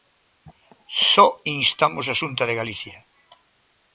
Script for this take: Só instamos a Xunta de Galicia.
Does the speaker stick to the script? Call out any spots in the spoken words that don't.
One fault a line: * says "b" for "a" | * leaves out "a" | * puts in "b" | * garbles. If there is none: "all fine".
all fine